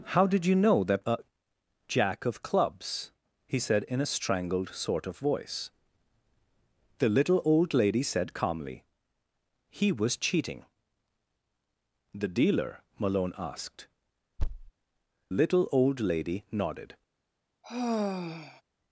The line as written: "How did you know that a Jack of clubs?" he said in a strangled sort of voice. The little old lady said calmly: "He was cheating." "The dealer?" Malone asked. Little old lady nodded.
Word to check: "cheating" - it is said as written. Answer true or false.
true